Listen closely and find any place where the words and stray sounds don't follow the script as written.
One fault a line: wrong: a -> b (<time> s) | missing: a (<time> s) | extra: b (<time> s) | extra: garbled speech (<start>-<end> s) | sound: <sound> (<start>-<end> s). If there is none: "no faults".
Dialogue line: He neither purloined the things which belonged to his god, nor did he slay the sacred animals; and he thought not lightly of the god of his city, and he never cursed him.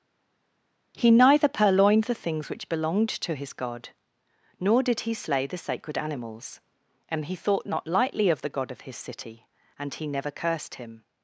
no faults